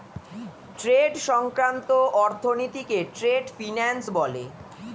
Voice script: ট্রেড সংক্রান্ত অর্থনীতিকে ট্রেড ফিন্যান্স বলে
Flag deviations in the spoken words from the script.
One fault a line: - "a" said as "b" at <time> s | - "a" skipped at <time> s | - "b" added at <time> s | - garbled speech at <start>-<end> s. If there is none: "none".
none